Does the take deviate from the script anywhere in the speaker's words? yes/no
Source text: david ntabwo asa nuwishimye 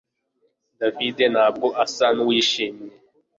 no